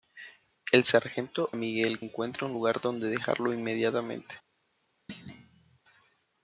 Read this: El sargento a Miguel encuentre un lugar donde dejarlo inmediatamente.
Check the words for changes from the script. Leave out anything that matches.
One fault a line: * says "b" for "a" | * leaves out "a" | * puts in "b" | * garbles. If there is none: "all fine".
all fine